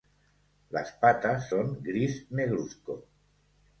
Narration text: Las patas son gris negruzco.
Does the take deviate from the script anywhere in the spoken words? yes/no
no